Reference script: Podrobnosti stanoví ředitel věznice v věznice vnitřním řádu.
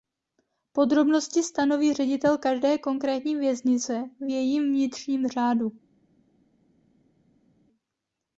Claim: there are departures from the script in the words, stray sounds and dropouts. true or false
true